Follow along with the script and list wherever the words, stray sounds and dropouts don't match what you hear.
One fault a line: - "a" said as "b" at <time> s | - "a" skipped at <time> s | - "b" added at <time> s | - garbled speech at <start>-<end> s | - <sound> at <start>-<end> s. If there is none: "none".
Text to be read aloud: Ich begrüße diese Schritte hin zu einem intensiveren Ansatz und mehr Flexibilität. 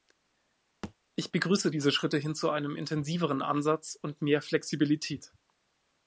- thud at 0.8-0.9 s